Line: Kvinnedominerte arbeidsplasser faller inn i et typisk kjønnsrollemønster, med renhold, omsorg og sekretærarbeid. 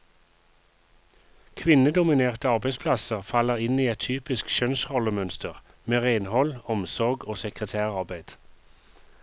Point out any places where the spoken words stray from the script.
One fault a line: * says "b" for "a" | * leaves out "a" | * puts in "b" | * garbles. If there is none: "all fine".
all fine